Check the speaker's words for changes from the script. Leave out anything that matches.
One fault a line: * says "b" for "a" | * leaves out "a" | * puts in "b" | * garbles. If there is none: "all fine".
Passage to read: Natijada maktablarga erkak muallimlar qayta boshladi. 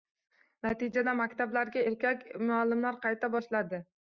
all fine